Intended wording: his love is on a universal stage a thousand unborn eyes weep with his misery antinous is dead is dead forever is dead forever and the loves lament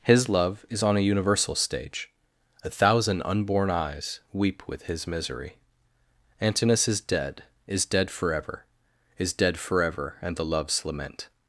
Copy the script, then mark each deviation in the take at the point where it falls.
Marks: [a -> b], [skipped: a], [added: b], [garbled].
his love is on a universal stage a thousand unborn eyes weep with his misery antinous is dead is dead forever is dead forever and the loves lament